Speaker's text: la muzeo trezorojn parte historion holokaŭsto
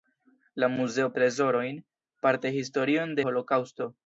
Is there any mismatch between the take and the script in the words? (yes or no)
no